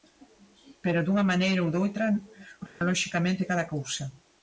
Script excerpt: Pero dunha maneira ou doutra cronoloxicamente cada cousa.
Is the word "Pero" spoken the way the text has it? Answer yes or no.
yes